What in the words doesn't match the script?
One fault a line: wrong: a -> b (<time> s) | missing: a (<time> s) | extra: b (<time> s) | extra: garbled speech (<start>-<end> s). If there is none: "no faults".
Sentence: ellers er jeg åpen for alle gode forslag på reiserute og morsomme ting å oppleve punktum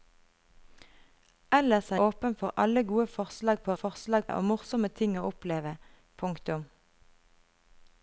missing: jeg (2.0 s)
wrong: reiserute -> forslag (3.8 s)